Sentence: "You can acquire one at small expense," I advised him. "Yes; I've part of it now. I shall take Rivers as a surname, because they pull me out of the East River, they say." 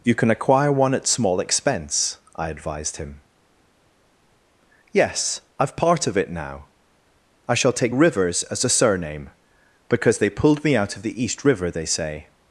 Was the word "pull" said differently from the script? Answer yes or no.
yes